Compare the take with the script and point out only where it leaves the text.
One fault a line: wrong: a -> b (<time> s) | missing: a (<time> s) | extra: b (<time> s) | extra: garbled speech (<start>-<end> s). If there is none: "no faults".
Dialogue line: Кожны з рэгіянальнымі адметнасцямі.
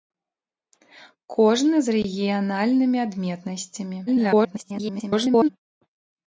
extra: garbled speech (4.1-5.5 s)